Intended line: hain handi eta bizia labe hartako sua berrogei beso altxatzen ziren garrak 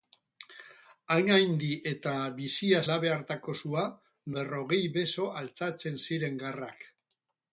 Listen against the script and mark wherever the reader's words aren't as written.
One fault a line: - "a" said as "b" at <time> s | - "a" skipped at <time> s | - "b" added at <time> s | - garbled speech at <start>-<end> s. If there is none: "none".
none